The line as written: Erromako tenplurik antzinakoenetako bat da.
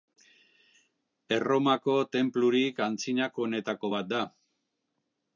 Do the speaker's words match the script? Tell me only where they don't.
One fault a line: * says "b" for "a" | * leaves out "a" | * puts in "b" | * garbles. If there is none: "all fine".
all fine